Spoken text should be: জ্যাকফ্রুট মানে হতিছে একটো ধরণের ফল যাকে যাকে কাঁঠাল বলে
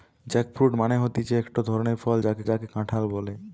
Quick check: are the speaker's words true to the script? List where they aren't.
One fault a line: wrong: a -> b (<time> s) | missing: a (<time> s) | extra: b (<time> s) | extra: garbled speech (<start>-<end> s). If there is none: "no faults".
no faults